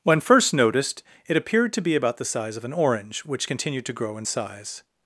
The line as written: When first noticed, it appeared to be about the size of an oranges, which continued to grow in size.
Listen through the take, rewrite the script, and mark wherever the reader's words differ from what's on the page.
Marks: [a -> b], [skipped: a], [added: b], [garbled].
When first noticed, it appeared to be about the size of an [oranges, -> orange] which continued to grow in size.